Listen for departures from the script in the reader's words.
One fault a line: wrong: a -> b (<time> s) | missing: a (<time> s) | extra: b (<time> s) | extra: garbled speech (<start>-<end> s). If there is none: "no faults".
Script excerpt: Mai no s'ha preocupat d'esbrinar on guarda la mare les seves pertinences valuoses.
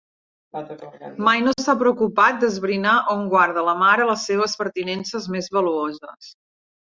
extra: més (5.4 s)